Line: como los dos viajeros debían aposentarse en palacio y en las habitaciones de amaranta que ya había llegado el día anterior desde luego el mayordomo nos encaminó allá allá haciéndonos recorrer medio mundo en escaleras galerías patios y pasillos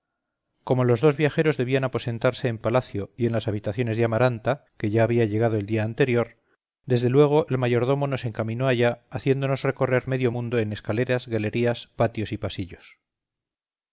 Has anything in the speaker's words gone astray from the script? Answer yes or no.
yes